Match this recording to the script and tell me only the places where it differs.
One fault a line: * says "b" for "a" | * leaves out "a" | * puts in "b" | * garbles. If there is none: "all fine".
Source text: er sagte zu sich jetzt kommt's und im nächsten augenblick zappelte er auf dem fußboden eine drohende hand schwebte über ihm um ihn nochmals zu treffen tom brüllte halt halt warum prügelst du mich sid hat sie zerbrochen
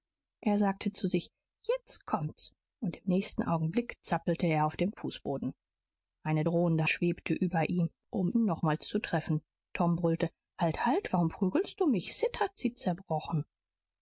* leaves out "hand"